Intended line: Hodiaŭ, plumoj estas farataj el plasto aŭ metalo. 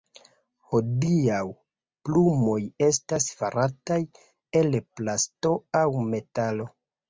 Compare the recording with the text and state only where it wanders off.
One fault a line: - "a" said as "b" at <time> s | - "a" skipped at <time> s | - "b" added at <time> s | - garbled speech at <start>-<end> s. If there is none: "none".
none